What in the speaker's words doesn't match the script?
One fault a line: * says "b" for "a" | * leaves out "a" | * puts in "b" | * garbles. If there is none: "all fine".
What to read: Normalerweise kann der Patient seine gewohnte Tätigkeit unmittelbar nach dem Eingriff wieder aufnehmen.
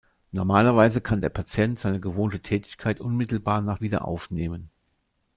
* leaves out "dem Eingriff"